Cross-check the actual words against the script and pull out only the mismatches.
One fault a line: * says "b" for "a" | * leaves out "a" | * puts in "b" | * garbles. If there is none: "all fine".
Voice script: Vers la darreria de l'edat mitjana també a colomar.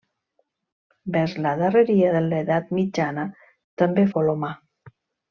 all fine